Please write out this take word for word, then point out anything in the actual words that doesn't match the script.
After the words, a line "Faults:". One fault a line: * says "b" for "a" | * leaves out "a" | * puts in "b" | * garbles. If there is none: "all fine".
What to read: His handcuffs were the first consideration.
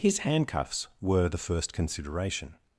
His handcuffs were the first consideration.
Faults:
all fine